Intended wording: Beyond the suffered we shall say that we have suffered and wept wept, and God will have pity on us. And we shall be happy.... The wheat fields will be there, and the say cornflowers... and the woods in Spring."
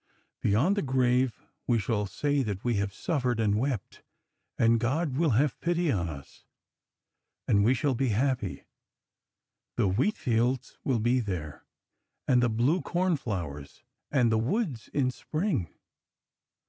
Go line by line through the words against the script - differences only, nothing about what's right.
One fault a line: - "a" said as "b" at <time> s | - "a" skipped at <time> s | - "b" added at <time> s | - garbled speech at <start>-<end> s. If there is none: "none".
- "suffered" said as "grave" at 0.8 s
- "wept" skipped at 4.0 s
- "say" said as "blue" at 12.5 s